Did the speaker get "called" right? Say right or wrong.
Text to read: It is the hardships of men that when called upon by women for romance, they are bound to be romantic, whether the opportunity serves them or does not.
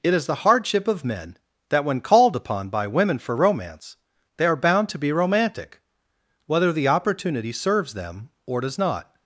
right